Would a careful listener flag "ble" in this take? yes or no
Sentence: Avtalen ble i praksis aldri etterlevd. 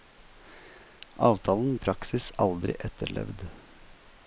yes